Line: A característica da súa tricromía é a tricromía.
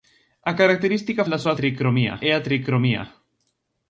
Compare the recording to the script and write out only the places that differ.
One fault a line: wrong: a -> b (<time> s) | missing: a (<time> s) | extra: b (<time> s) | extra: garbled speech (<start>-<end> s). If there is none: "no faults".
no faults